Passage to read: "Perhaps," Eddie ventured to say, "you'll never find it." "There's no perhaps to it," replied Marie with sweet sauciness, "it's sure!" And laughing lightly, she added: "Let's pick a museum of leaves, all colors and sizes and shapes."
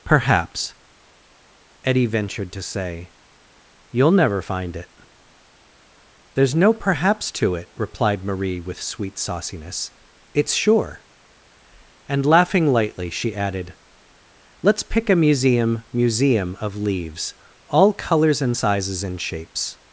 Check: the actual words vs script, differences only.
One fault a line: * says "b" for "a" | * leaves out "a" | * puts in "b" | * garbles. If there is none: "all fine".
* puts in "museum"